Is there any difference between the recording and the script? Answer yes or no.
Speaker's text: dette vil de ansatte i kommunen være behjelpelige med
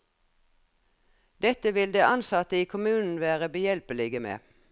no